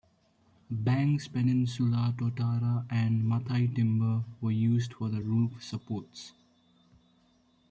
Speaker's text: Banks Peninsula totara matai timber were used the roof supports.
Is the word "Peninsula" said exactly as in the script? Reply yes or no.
yes